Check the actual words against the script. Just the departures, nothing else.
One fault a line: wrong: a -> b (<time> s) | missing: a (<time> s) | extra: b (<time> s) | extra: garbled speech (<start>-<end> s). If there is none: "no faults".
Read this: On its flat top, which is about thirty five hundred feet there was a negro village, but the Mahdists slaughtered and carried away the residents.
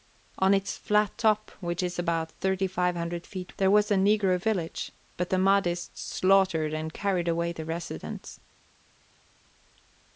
no faults